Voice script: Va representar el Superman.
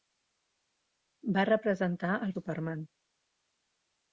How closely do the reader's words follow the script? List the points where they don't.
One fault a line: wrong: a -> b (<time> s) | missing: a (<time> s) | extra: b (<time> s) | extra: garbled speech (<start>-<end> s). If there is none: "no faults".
no faults